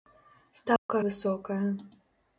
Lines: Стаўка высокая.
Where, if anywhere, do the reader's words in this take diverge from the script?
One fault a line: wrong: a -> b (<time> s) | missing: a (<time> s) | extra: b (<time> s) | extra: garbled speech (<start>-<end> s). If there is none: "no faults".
no faults